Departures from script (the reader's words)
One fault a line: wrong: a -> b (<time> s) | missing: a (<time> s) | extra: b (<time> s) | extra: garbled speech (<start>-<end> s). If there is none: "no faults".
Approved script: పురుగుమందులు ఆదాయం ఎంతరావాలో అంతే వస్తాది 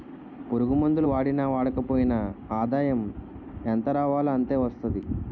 extra: వాడినా వాడకపోయినా (1.0 s)